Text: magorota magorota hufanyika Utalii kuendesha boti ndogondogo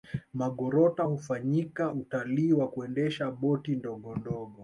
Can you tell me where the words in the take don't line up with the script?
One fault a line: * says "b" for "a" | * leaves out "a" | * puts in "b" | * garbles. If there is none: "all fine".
* leaves out "magorota"
* puts in "wa"